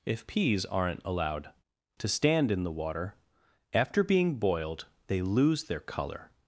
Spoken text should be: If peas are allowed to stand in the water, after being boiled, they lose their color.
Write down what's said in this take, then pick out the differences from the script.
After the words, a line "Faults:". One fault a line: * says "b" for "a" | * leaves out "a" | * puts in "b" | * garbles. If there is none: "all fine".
If peas aren't allowed to stand in the water, after being boiled, they lose their color.
Faults:
* says "aren't" for "are"